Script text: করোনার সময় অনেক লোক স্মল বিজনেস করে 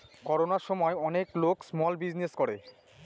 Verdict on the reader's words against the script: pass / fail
pass